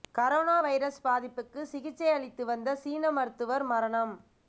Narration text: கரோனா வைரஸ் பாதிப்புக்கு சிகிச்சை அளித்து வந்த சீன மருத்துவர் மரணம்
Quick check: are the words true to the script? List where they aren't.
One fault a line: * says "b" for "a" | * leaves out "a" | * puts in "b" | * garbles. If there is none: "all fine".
all fine